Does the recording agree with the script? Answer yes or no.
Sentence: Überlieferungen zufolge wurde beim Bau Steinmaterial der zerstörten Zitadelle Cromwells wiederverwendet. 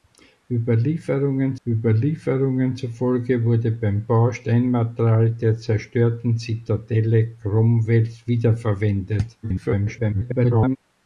no